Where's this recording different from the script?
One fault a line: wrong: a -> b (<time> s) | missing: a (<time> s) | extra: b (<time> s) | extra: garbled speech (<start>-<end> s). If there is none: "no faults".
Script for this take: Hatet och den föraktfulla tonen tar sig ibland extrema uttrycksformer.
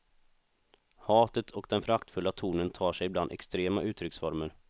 no faults